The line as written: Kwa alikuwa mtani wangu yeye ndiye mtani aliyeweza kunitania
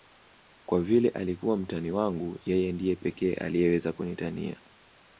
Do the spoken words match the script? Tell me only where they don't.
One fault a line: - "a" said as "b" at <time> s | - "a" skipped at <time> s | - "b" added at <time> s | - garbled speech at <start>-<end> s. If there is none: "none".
- "vile" added at 0.8 s
- "mtani" said as "pekee" at 3.0 s